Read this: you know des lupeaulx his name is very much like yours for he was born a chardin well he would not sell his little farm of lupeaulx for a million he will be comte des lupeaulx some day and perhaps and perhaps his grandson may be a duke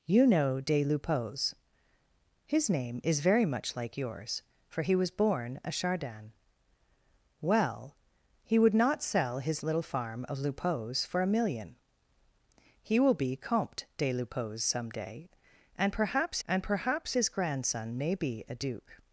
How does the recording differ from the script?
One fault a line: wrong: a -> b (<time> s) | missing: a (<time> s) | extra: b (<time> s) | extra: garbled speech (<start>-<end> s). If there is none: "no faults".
no faults